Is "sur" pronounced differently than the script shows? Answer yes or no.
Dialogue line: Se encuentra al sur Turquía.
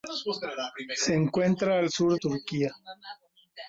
no